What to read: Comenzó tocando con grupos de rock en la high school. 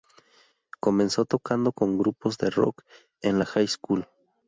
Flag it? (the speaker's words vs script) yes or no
no